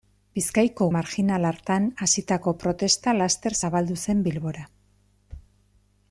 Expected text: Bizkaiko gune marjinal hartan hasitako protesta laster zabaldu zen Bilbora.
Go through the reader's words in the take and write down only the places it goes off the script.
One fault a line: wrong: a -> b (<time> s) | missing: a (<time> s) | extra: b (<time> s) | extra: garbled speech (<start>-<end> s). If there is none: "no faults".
missing: gune (0.8 s)